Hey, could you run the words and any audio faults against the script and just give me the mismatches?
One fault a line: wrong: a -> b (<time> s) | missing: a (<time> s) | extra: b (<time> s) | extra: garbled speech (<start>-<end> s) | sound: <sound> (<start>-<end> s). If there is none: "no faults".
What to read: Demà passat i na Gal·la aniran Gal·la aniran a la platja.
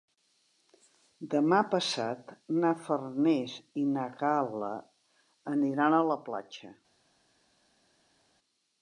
extra: na Farners (2.6 s)
missing: Gal·la aniran (6.0 s)